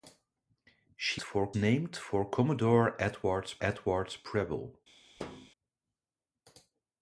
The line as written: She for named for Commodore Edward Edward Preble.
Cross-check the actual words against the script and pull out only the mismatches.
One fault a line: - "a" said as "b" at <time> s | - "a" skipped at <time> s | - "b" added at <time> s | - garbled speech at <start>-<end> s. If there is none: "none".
none